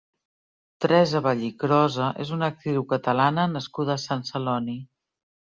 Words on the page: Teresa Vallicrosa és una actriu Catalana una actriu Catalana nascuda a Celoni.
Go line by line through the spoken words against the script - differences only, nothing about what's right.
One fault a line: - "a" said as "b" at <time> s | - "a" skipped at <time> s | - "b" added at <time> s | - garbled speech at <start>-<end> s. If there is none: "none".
- "una actriu Catalana" skipped at 3.5 s
- "Sant" added at 4.1 s